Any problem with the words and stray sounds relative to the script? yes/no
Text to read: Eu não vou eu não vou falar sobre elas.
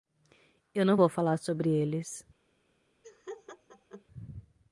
yes